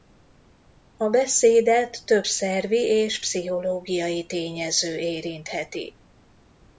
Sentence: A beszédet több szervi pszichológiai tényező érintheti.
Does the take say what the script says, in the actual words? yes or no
no